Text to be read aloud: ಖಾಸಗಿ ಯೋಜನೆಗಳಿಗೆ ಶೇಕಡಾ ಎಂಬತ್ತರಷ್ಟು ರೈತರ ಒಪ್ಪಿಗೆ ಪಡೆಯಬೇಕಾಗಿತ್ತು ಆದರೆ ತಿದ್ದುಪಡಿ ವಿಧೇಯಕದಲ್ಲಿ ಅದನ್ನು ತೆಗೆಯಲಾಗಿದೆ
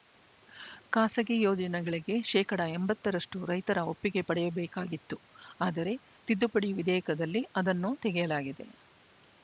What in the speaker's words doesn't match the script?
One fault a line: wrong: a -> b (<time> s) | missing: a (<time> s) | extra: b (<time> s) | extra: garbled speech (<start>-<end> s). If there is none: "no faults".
no faults